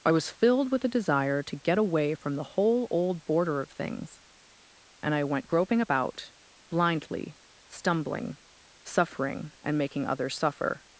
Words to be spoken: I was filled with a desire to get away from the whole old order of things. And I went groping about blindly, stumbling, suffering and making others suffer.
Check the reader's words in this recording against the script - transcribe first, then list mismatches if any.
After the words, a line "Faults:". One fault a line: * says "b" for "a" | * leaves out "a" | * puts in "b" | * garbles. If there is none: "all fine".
I was filled with a desire to get away from the whole old border of things. And I went groping about blindly, stumbling, suffering and making others suffer.
Faults:
* says "border" for "order"